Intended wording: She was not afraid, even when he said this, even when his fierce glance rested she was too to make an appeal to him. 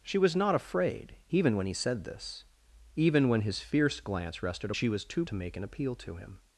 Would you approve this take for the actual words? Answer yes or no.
yes